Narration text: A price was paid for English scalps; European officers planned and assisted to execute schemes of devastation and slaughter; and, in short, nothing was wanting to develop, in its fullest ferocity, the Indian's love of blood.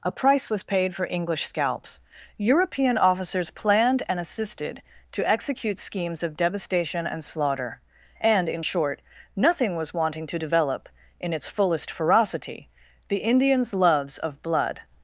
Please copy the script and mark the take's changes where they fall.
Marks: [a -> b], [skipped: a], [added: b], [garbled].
A price was paid for English scalps; European officers planned and assisted to execute schemes of devastation and slaughter; and, in short, nothing was wanting to develop, in its fullest ferocity, the Indian's [love -> loves] of blood.